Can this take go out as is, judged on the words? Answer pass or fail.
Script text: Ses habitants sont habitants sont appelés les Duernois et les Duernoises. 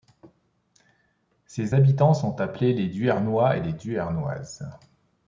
fail